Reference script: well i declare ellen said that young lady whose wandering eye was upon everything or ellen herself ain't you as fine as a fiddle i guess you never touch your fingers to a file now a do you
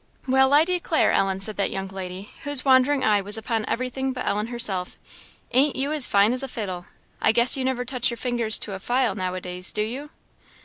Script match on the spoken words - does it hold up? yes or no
no